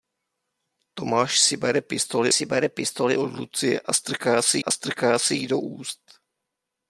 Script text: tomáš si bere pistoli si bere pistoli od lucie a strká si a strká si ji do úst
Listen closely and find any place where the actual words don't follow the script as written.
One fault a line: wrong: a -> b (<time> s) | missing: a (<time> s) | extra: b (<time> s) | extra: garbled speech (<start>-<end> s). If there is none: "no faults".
no faults